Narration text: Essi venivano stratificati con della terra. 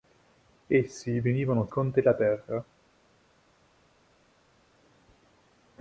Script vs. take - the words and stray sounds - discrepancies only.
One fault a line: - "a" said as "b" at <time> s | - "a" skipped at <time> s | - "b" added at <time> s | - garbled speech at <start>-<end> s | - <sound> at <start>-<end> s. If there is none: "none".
- "stratificati" skipped at 1.7 s